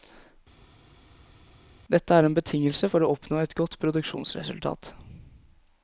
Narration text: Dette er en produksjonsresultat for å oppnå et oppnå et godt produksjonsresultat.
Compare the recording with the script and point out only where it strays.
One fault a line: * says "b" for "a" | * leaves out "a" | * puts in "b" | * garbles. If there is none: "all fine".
* says "betingelse" for "produksjonsresultat"
* leaves out "oppnå et"